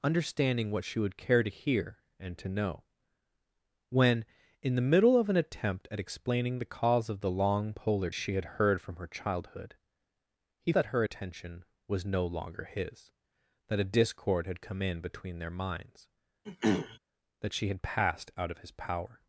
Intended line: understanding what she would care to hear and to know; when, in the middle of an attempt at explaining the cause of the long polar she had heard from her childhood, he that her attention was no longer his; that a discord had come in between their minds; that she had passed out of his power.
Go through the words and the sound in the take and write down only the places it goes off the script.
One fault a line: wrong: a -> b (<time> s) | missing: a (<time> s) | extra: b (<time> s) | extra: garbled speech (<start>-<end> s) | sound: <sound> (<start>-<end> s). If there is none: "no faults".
sound: throat clearing (16.4-17.0 s)